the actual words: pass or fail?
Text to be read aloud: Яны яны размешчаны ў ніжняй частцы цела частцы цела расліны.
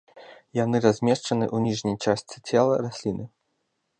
fail